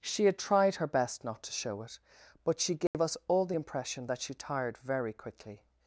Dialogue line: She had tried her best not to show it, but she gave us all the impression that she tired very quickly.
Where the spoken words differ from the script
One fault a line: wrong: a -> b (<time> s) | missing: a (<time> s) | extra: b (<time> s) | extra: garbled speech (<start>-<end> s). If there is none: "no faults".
no faults